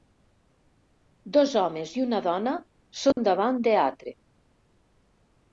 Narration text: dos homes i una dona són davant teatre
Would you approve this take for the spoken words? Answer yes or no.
yes